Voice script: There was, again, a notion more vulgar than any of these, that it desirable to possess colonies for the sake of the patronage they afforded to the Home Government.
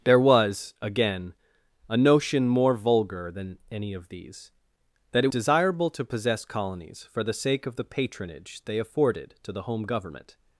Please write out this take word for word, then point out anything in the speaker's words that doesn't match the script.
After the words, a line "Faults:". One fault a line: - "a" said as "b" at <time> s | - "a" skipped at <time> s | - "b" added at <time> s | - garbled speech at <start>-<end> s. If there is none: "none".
There was, again, a notion more vulgar than any of these, that it desirable to possess colonies for the sake of the patronage they afforded to the Home Government.
Faults:
none